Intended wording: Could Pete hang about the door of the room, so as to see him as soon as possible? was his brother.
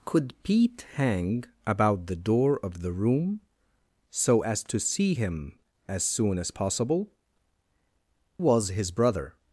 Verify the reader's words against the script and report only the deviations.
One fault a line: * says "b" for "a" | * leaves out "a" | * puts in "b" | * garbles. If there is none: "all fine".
all fine